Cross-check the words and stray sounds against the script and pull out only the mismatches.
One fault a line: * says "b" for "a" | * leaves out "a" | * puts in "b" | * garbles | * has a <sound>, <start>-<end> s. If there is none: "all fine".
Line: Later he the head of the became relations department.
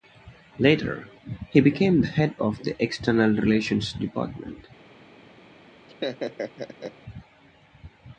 * puts in "became"
* says "external" for "became"
* has a laugh, 5.9-6.9 s